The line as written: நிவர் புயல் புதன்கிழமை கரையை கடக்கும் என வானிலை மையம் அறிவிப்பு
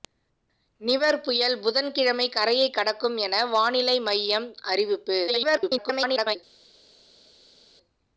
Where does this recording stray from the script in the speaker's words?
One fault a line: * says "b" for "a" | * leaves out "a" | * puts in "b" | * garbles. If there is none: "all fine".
* garbles